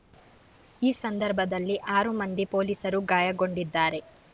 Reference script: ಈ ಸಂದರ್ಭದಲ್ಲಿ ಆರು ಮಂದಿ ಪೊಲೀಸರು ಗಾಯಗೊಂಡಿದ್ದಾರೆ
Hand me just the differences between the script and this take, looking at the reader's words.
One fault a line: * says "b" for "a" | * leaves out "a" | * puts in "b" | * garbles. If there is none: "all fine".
all fine